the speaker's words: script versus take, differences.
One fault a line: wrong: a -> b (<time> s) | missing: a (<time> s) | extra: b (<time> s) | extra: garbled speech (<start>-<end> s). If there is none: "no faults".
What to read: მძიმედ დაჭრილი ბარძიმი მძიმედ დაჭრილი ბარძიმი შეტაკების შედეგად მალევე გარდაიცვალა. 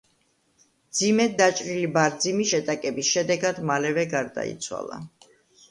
missing: მძიმედ დაჭრილი ბარძიმი (2.5 s)